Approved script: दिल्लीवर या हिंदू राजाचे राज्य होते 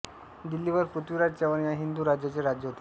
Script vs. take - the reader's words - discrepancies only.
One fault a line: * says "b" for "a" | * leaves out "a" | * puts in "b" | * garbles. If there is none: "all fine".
* puts in "पृथ्वीराज चव्हाण"